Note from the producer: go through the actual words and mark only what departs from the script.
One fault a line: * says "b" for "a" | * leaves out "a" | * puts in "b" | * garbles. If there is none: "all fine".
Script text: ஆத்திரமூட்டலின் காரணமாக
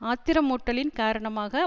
all fine